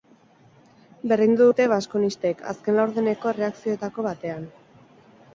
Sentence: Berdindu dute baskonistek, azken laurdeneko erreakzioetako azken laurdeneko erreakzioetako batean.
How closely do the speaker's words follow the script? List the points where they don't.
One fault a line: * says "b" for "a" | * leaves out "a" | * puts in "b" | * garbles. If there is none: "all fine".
* leaves out "azken laurdeneko erreakzioetako"